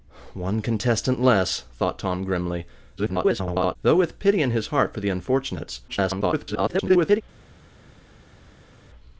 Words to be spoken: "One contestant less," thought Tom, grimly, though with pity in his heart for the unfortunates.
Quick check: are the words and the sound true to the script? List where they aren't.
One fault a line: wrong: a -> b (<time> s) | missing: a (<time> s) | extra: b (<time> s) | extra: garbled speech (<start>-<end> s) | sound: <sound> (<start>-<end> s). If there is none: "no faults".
extra: garbled speech (3.0-3.8 s)
extra: garbled speech (5.9-7.2 s)